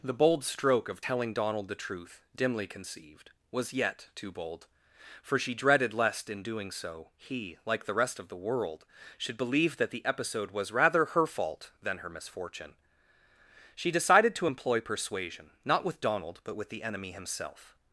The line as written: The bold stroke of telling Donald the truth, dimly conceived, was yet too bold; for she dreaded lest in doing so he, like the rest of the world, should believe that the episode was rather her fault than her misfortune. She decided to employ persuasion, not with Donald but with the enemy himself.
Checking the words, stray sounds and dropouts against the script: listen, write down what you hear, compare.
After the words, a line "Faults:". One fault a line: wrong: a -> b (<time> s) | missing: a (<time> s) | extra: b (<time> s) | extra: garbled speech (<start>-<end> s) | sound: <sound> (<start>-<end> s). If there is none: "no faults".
The bold stroke of telling Donald the truth, dimly conceived, was yet too bold; for she dreaded lest in doing so he, like the rest of the world, should believe that the episode was rather her fault than her misfortune. She decided to employ persuasion, not with Donald but with the enemy himself.
Faults:
no faults